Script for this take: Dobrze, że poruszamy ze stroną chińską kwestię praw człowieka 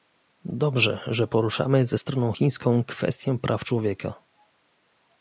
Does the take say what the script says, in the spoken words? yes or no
yes